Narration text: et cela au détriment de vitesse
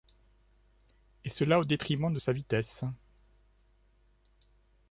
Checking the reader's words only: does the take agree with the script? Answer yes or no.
no